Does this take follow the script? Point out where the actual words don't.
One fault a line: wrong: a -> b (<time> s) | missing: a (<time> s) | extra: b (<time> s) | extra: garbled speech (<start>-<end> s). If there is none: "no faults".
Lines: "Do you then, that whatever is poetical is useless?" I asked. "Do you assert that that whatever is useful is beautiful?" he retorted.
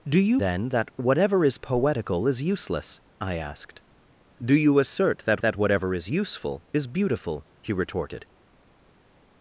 no faults